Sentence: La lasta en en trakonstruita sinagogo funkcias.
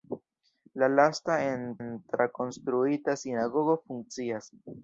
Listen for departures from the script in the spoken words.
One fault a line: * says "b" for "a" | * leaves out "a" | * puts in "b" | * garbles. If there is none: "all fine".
all fine